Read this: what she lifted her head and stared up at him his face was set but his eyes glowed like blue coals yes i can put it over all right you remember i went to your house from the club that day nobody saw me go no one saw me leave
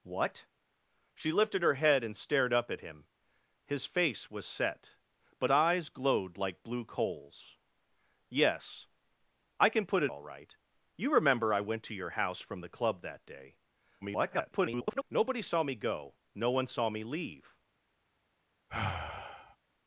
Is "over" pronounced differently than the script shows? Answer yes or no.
yes